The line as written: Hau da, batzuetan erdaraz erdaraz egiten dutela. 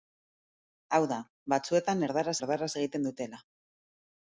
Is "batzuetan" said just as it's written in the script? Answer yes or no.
yes